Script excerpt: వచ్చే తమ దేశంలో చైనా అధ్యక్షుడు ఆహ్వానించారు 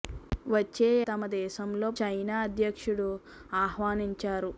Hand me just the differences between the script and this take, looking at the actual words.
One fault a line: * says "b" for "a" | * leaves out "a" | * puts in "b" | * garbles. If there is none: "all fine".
all fine